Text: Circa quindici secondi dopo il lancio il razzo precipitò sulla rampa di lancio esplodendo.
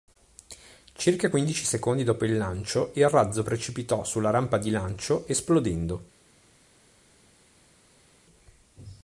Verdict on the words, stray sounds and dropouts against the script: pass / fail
pass